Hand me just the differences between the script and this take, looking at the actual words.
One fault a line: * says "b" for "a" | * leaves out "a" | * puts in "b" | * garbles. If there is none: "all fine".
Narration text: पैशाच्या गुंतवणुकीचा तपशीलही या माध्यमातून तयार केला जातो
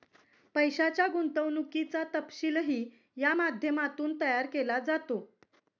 all fine